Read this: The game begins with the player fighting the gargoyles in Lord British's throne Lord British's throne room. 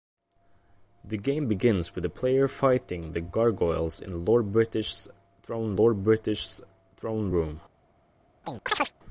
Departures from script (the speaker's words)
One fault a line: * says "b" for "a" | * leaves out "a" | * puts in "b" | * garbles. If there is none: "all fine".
all fine